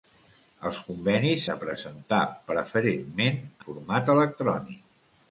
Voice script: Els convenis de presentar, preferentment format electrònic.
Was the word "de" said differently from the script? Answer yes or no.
no